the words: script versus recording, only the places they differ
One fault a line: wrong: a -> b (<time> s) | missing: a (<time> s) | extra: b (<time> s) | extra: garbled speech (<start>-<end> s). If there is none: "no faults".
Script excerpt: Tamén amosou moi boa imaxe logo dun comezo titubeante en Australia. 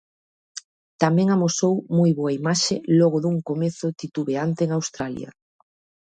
no faults